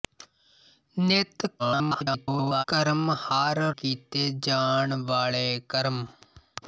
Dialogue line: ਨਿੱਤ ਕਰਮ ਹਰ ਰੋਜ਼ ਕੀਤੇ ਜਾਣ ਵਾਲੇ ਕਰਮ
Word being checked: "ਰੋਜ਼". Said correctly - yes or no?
no